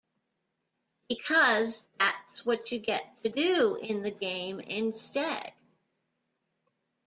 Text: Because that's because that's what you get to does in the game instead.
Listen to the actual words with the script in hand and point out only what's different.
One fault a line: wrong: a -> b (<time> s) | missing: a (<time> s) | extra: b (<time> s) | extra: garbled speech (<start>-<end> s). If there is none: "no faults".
missing: because that's (2.4 s)
wrong: does -> do (3.3 s)